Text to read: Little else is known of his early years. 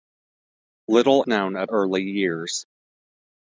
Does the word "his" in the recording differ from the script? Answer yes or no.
yes